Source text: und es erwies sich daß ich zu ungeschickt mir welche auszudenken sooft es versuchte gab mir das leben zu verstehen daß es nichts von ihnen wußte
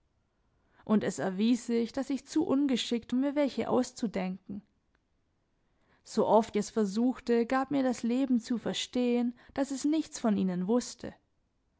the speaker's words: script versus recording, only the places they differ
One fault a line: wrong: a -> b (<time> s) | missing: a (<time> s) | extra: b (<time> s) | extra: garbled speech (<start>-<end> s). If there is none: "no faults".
no faults